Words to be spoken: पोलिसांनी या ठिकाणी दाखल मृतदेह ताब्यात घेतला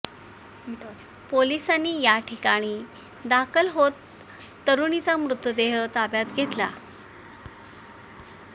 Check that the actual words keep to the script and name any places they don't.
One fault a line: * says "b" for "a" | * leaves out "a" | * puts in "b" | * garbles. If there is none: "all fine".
* puts in "होत तरुणीचा"